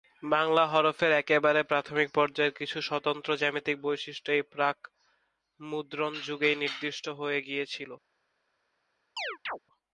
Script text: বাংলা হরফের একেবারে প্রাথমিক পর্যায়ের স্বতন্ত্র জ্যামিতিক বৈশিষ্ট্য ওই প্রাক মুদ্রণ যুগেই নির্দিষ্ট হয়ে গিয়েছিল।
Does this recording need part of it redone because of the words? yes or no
yes